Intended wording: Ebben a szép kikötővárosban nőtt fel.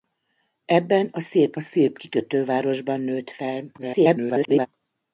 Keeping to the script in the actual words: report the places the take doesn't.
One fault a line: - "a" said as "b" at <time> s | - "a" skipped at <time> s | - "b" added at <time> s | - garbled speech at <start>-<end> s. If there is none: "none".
- "szép" added at 1.6 s
- garbled speech at 3.8-4.7 s